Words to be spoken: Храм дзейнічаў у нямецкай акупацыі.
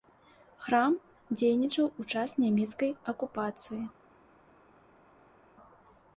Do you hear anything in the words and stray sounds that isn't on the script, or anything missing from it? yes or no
yes